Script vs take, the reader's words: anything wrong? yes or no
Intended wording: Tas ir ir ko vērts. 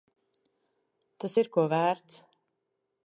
yes